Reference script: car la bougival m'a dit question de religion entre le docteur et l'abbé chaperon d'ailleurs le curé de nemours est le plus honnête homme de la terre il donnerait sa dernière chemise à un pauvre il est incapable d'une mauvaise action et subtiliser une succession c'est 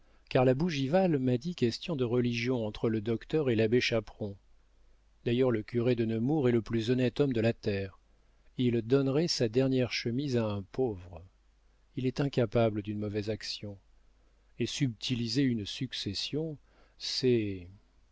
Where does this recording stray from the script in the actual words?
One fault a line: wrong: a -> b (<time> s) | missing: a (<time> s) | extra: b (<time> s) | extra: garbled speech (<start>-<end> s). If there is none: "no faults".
no faults